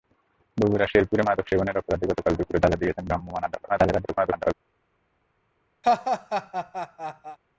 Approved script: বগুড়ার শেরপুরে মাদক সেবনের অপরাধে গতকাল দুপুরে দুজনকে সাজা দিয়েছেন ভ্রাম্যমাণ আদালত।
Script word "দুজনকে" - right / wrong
wrong